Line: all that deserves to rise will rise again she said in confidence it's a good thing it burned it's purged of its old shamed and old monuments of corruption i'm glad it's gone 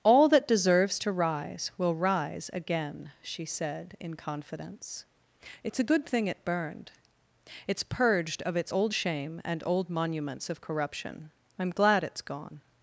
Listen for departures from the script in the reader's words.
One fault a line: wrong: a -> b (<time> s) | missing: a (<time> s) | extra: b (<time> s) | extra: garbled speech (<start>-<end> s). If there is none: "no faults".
wrong: shamed -> shame (8.9 s)